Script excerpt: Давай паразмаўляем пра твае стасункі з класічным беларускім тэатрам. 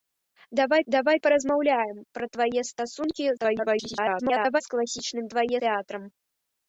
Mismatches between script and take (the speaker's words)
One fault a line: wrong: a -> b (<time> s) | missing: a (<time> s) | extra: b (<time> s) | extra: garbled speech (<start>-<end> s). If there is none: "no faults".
extra: давай (0.9 s)
extra: garbled speech (3.4-4.6 s)
wrong: беларускім -> твае (5.3 s)